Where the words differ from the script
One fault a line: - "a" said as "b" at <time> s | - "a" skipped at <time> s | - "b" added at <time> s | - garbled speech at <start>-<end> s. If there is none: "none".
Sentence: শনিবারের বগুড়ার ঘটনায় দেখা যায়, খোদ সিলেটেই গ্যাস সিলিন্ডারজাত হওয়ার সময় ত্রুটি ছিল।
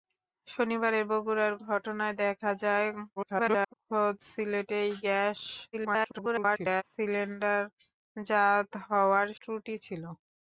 - garbled speech at 3.2-3.7 s
- garbled speech at 5.7-6.8 s
- "সময়" skipped at 9.3 s